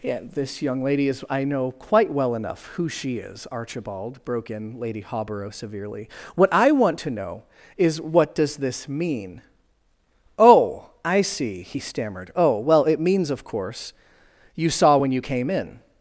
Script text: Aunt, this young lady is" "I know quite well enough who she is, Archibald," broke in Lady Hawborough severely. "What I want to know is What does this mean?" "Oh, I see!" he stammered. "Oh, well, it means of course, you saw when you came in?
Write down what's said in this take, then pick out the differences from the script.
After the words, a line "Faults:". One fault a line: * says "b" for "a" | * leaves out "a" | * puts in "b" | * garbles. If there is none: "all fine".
Yeah, this young lady is" "I know quite well enough who she is, Archibald," broke in Lady Hawborough severely. "What I want to know is What does this mean?" "Oh, I see!" he stammered. "Oh, well, it means of course, you saw when you came in?
Faults:
* says "Yeah" for "Aunt"